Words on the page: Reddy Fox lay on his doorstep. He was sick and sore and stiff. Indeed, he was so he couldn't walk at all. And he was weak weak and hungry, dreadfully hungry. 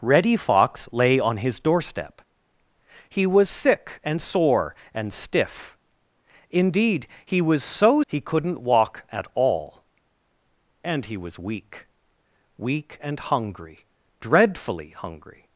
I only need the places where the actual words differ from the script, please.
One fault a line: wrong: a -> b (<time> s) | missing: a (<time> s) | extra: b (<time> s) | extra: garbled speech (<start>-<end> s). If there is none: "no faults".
no faults